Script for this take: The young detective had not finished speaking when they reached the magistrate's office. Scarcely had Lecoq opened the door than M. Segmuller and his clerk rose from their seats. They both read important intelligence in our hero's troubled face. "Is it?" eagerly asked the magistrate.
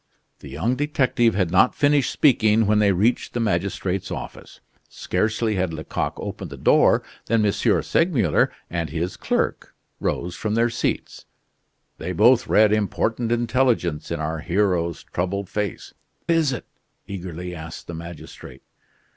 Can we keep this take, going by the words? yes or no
yes